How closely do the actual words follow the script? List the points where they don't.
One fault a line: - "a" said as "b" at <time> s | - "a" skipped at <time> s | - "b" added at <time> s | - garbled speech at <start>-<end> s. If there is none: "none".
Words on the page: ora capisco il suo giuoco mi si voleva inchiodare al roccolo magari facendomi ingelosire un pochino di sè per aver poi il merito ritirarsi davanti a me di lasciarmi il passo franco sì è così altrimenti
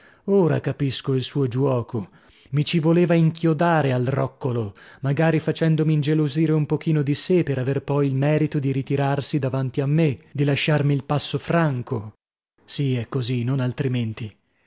- "si" said as "ci" at 2.6 s
- "di" added at 8.6 s
- "non" added at 13.4 s